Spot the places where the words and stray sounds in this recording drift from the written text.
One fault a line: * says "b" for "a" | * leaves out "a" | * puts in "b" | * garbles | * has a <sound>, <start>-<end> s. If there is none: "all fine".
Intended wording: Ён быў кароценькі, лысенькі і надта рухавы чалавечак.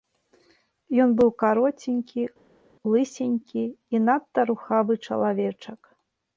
all fine